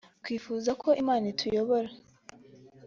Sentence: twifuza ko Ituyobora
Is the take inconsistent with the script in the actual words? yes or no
yes